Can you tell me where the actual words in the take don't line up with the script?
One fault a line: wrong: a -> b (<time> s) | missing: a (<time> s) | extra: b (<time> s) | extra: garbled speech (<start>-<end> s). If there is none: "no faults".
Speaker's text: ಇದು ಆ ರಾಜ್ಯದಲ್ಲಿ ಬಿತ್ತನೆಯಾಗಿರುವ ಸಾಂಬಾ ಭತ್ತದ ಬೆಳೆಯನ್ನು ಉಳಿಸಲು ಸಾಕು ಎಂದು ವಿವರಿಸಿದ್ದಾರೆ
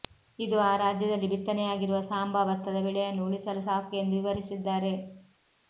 no faults